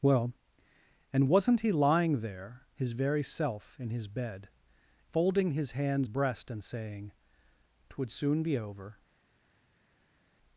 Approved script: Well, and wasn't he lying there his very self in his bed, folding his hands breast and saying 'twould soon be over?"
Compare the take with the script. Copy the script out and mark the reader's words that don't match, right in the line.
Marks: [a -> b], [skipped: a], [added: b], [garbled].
Well, and wasn't he lying there his very self in his bed, folding his hands breast and saying 'twould soon be over?"